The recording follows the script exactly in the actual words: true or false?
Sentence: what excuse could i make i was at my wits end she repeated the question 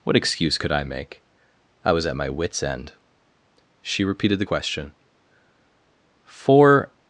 false